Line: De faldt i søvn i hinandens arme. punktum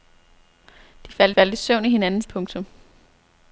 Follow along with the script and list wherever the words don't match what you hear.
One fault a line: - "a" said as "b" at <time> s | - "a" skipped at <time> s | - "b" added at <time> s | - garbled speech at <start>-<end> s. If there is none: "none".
- "faldt" added at 1.3 s
- "arme" skipped at 2.3 s